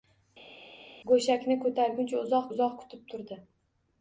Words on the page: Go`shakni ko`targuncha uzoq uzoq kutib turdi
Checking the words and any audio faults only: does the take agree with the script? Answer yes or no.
yes